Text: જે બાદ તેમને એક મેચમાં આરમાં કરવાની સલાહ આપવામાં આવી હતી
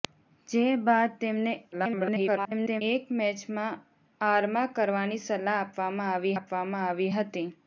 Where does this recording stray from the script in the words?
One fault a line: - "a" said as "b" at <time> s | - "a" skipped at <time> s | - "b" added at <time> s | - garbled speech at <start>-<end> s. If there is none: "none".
- garbled speech at 1.7-2.8 s
- "આપવામાં આવી" added at 6.3 s